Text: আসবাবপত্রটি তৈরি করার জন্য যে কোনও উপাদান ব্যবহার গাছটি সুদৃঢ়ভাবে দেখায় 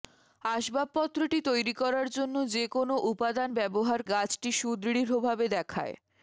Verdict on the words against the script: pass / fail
pass